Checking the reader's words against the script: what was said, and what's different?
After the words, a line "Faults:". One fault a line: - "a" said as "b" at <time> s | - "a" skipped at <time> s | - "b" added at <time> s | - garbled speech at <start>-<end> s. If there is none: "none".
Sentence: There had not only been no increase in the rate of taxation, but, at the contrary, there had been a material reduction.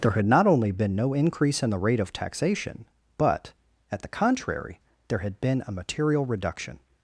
There had not only been no increase in the rate of taxation, but, at the contrary, there had been a material reduction.
Faults:
none